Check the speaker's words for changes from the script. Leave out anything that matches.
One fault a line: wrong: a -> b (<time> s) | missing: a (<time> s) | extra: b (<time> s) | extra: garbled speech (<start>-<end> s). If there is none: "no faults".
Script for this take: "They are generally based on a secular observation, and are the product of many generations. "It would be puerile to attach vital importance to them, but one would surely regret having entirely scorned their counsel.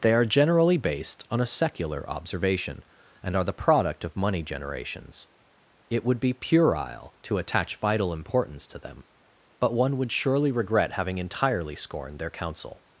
wrong: many -> money (4.2 s)